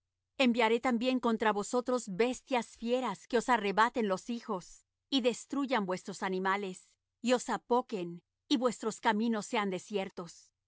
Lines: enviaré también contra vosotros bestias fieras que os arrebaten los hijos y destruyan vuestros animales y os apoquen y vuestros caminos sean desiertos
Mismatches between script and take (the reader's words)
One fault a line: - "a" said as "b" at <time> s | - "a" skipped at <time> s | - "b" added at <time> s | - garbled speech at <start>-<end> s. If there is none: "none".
none